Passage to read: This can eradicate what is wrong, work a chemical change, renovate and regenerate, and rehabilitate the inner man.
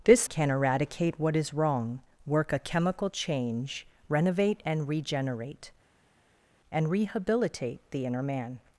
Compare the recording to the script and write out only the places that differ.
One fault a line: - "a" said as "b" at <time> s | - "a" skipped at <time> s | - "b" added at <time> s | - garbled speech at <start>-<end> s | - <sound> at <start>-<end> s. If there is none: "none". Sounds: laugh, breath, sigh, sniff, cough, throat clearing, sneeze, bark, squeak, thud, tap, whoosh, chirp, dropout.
none